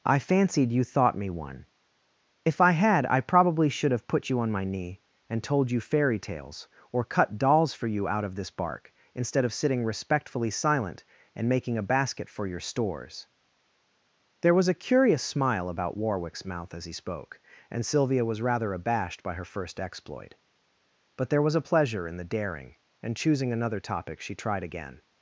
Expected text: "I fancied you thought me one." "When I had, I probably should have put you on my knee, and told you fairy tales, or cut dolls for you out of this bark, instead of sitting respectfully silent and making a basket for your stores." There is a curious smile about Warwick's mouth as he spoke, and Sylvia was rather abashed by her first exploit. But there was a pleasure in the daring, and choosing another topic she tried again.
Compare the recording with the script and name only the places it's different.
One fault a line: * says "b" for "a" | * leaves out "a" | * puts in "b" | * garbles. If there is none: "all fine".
* says "If" for "When"
* says "was" for "is"